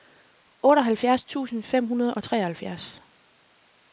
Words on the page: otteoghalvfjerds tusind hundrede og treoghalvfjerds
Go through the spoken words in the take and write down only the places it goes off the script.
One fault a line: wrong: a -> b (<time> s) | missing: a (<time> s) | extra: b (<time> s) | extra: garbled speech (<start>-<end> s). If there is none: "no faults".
extra: fem (1.6 s)